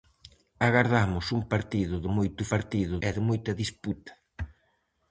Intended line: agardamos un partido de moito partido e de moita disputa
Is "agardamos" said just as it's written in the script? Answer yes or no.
yes